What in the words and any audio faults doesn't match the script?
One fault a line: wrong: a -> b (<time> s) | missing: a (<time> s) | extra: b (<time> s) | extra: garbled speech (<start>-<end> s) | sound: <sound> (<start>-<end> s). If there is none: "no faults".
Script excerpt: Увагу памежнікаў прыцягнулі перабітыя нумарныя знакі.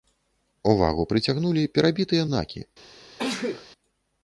missing: памежнікаў (1.1 s)
missing: нумарныя (2.2 s)
sound: sneeze (3.2-3.7 s)